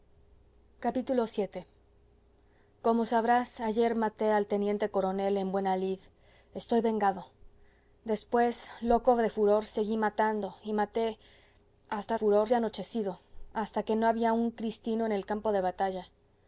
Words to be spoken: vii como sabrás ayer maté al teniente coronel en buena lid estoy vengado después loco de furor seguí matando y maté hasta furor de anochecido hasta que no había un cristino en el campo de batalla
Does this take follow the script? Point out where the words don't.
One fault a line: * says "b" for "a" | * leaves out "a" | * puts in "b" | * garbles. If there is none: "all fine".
all fine